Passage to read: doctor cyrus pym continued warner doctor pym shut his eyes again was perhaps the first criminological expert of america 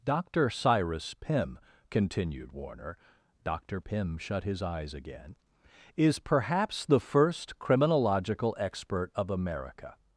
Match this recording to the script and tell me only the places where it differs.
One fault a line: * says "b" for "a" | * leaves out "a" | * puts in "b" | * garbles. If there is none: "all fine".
* says "is" for "was"